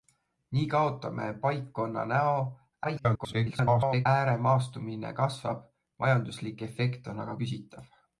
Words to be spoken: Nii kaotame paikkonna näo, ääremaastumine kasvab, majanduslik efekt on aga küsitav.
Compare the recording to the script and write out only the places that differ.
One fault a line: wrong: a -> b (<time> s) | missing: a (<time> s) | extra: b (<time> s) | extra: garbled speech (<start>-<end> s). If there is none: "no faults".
extra: garbled speech (2.8-4.1 s)